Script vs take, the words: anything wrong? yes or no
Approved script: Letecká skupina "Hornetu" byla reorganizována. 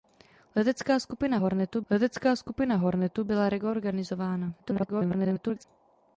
yes